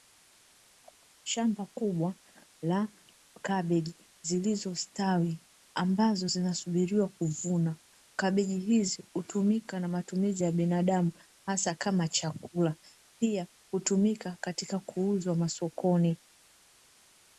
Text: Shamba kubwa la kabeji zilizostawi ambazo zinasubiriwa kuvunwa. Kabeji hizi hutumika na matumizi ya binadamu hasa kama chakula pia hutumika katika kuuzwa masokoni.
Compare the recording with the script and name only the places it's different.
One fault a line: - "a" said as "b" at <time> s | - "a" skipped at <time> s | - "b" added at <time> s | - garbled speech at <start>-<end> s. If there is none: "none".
none